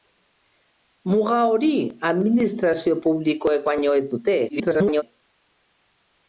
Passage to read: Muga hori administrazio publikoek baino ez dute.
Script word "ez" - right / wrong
right